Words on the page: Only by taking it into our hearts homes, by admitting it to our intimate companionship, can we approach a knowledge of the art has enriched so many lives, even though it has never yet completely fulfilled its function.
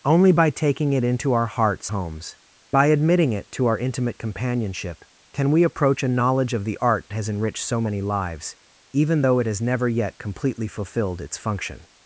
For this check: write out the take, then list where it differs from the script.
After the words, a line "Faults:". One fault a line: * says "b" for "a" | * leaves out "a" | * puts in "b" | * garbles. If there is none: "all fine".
Only by taking it into our hearts homes, by admitting it to our intimate companionship, can we approach a knowledge of the art has enriched so many lives, even though it has never yet completely fulfilled its function.
Faults:
all fine